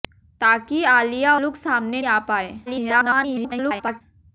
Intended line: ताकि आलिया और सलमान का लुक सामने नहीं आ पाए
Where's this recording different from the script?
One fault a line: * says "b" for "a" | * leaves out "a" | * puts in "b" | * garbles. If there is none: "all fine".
* leaves out "और सलमान का"
* leaves out "नहीं"
* garbles